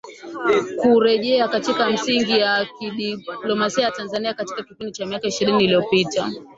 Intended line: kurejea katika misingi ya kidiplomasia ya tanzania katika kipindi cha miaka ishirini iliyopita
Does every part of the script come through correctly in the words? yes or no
yes